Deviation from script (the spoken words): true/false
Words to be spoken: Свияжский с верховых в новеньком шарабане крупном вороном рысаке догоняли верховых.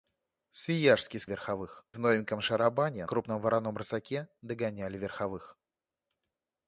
false